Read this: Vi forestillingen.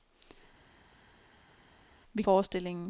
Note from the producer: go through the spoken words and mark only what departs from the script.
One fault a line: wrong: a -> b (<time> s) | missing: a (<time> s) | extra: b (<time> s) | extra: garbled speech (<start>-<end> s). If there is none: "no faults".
no faults